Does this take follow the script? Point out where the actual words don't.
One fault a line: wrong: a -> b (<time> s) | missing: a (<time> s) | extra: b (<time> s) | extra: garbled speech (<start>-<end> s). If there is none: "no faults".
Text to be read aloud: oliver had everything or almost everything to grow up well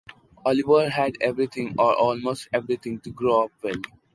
no faults